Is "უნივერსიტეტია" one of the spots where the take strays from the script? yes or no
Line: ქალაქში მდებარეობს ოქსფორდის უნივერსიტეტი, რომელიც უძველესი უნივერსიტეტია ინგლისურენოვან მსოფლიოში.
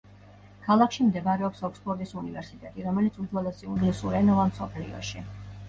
yes